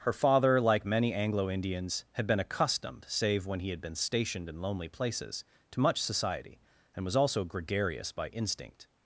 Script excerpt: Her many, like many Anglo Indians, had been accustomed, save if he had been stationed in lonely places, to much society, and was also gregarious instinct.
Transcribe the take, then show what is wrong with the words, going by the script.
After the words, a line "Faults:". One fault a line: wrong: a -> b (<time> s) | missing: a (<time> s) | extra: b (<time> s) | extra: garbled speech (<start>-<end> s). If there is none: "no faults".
Her father, like many Anglo Indians, had been accustomed, save when he had been stationed in lonely places, to much society, and was also gregarious by instinct.
Faults:
wrong: many -> father (0.1 s)
wrong: if -> when (3.5 s)
extra: by (8.1 s)